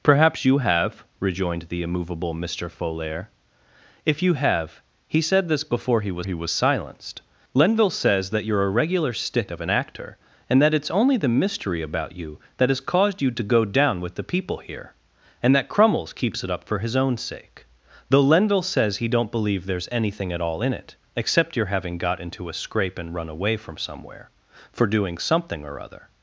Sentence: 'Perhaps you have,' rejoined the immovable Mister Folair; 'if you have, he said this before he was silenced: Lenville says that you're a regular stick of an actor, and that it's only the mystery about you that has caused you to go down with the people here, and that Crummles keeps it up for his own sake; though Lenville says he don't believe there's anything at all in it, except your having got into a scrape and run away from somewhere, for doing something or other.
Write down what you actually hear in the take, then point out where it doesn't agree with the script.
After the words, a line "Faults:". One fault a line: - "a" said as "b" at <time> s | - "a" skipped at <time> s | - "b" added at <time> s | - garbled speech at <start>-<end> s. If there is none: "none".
'Perhaps you have,' rejoined the immovable Mister Folair; 'if you have, he said this before he was he was silenced: Lenville says that you're a regular stick of an actor, and that it's only the mystery about you that has caused you to go down with the people here, and that Crummles keeps it up for his own sake; though Lenville says he don't believe there's anything at all in it, except your having got into a scrape and run away from somewhere, for doing something or other.
Faults:
- "he was" added at 6.2 s